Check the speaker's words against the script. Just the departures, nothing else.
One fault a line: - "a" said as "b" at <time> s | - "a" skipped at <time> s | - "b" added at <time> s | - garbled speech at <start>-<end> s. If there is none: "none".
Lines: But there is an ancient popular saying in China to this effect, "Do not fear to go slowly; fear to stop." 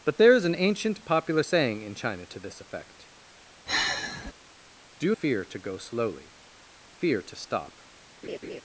- "not" skipped at 5.1 s